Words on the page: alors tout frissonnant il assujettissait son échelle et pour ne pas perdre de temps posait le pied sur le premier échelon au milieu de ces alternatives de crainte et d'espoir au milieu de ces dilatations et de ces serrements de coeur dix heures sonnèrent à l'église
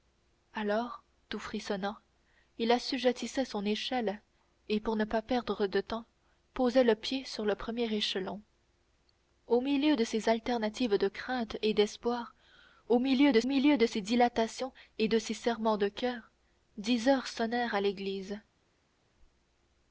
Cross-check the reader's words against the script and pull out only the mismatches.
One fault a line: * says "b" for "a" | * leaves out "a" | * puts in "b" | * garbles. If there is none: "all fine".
* puts in "milieu de"